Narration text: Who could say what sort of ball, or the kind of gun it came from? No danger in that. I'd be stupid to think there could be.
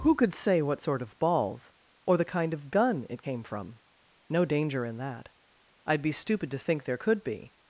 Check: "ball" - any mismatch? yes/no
yes